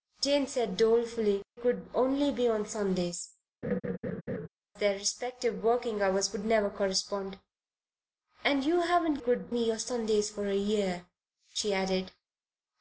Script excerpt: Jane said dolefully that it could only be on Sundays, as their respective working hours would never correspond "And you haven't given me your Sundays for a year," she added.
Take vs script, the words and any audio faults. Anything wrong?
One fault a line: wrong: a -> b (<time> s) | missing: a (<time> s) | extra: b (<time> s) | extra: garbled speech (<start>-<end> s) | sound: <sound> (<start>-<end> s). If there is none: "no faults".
missing: that it (1.4 s)
missing: as (3.3 s)
sound: laugh (3.6-4.5 s)
wrong: given -> could (9.2 s)